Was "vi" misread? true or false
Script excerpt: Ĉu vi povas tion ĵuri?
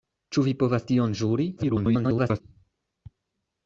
false